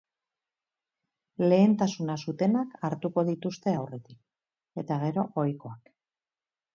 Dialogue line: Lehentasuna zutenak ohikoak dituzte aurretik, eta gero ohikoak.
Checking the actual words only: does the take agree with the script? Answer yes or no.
no